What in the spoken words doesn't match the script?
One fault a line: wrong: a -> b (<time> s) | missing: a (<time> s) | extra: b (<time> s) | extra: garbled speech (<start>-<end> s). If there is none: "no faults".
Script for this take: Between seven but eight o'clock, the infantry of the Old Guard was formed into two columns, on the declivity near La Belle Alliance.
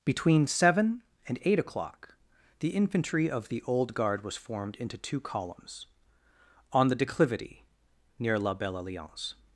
wrong: but -> and (1.3 s)